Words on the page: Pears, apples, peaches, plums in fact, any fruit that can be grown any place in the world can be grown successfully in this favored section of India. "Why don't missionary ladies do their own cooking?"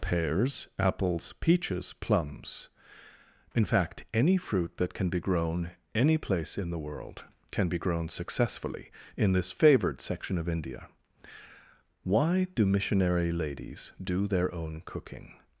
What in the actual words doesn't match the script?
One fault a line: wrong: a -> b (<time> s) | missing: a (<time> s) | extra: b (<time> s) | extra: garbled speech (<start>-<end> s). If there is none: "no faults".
wrong: don't -> do (12.6 s)